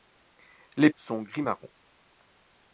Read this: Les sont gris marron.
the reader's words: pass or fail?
pass